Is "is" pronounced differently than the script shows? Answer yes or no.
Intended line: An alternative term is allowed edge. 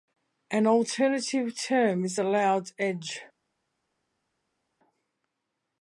no